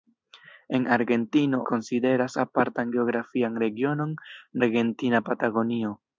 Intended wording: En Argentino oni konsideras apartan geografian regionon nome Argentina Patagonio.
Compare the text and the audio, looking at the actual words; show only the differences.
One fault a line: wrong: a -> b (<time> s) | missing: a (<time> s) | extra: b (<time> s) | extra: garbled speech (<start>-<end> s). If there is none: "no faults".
missing: oni (1.6 s)
missing: nome (4.2 s)